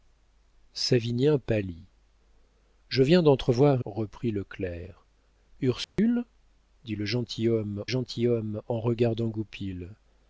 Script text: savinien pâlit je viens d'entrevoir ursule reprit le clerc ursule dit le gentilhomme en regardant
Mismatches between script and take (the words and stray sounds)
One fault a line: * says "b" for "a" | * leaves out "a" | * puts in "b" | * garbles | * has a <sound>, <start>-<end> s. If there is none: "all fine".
* leaves out "ursule"
* has a dropout, 5.8-6.0 s
* puts in "gentilhomme"